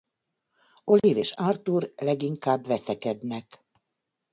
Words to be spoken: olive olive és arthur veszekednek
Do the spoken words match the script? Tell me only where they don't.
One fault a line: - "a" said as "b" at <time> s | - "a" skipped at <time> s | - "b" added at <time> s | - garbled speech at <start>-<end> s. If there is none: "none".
- "olive" skipped at 1.2 s
- "leginkább" added at 2.0 s